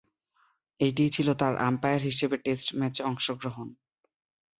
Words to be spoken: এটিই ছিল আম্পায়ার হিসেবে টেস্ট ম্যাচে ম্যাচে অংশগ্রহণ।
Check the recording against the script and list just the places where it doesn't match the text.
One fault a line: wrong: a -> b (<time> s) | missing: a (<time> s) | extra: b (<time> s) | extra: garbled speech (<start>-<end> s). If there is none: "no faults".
extra: তার (1.4 s)
missing: ম্যাচে (3.0 s)